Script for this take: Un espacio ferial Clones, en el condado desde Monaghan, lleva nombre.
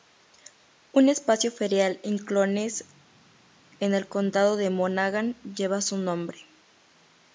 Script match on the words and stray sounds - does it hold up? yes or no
no